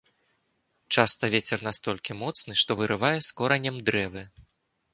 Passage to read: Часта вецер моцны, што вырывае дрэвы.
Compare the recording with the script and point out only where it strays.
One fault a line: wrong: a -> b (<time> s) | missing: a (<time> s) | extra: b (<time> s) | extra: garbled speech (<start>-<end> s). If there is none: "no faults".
extra: настолькі (1.7 s)
extra: з коранем (3.3 s)